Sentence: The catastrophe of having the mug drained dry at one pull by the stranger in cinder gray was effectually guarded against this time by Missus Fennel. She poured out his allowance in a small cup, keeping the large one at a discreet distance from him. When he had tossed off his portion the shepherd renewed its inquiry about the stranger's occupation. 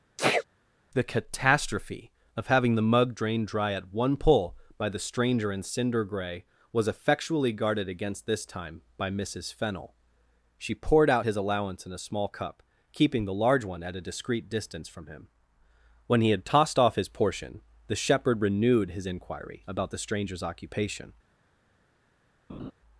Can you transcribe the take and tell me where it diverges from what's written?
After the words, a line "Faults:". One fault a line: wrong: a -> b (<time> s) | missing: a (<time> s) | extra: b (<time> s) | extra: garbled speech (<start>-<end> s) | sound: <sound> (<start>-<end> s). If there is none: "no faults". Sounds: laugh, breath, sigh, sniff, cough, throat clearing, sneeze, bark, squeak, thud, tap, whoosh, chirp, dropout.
The catastrophe of having the mug drained dry at one pull by the stranger in cinder gray was effectually guarded against this time by Missus Fennel. She poured out his allowance in a small cup, keeping the large one at a discreet distance from him. When he had tossed off his portion the shepherd renewed his inquiry about the stranger's occupation.
Faults:
sound: sneeze (0.2-0.4 s)
wrong: its -> his (18.9 s)
sound: laugh (22.5-22.7 s)